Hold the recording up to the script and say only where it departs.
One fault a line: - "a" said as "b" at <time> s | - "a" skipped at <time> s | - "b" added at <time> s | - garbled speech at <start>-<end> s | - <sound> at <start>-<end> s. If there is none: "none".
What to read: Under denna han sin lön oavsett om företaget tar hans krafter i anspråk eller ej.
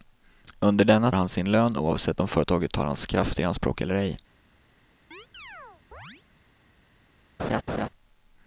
- chirp at 5.1-6.2 s
- laugh at 7.4-7.9 s